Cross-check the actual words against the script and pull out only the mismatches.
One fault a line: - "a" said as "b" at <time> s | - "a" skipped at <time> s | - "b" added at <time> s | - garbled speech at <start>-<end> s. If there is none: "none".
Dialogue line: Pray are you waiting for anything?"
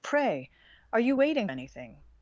- "for" skipped at 1.5 s